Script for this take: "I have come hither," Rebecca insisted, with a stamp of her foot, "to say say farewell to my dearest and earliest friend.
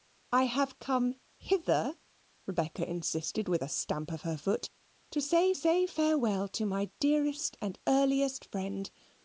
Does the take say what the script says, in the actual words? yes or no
yes